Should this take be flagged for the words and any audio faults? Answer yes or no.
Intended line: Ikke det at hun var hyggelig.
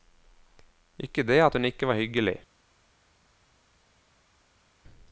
yes